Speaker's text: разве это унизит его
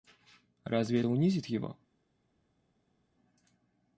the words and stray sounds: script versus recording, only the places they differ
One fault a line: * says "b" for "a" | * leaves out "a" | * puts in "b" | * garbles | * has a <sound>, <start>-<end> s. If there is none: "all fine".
* leaves out "это"